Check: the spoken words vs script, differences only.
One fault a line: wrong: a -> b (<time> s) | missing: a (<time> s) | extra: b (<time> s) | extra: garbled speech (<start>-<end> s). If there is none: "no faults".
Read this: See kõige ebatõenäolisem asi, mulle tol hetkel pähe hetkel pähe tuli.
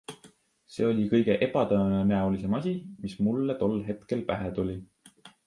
extra: oli (0.9 s)
extra: mis (3.0 s)
missing: hetkel pähe (4.5 s)